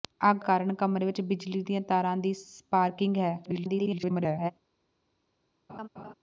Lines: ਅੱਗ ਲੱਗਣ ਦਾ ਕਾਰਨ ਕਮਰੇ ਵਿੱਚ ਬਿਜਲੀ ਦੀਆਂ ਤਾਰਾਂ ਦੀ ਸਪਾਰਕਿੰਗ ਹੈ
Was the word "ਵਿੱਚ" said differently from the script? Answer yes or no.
no